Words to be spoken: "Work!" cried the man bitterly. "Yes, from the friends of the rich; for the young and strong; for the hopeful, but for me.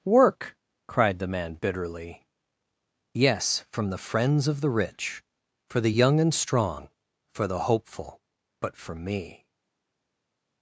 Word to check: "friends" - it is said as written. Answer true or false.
true